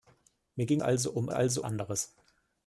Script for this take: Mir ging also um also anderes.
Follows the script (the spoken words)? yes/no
yes